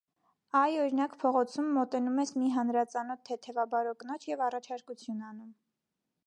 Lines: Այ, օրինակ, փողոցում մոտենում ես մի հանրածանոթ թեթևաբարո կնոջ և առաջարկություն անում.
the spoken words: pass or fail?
pass